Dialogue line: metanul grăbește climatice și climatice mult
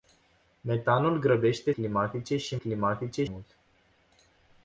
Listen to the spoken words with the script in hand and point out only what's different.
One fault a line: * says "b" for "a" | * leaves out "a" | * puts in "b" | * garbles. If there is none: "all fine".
all fine